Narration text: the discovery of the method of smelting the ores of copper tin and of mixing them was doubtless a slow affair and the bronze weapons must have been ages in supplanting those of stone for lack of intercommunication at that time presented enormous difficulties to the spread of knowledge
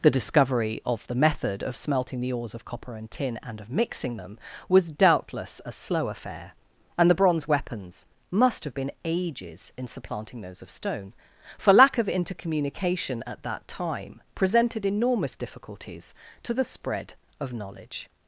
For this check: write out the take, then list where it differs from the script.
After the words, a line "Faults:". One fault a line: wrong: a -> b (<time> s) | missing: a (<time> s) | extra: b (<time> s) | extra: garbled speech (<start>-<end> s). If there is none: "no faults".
the discovery of the method of smelting the ores of copper and tin and of mixing them was doubtless a slow affair and the bronze weapons must have been ages in supplanting those of stone for lack of intercommunication at that time presented enormous difficulties to the spread of knowledge
Faults:
extra: and (3.0 s)